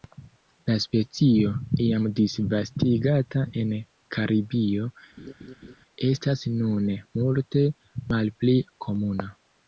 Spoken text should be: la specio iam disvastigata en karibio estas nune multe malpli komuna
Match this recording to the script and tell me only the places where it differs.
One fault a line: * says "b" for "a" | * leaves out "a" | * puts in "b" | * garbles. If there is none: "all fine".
all fine